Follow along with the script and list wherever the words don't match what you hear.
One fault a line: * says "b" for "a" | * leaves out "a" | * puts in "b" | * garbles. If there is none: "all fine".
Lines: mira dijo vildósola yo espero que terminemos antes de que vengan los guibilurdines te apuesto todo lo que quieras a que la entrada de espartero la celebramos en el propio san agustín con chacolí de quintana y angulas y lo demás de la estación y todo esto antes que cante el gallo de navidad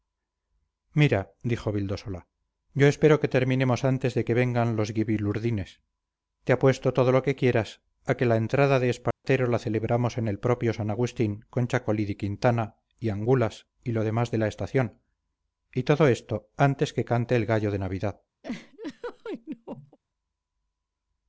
all fine